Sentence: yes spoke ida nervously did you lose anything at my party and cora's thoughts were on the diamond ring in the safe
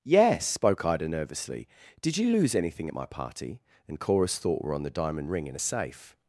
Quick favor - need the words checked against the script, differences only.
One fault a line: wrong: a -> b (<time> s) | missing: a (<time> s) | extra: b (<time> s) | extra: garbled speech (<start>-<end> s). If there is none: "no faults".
wrong: thoughts -> thought (4.4 s)
wrong: the -> a (5.6 s)